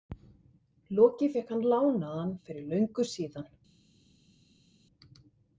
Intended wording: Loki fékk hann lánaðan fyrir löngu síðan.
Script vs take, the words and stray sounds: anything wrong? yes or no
no